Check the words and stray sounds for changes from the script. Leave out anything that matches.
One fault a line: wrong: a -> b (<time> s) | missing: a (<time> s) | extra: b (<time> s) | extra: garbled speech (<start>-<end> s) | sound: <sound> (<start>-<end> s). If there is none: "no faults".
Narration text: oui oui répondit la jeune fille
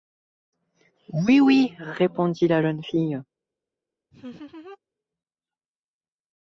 sound: laugh (4.1-4.8 s)